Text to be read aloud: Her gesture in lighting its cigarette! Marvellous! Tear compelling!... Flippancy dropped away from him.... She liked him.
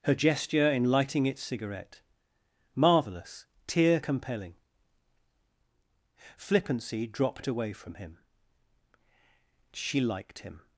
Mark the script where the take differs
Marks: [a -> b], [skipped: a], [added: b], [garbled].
Her gesture in lighting its cigarette! Marvellous! Tear compelling!... Flippancy dropped away from him.... She liked him.